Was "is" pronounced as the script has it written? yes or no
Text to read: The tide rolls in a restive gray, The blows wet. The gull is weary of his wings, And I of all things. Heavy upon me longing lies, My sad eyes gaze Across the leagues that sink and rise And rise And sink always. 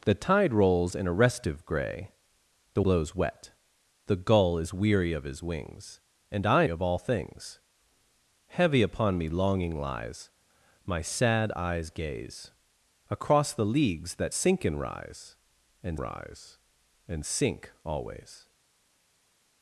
yes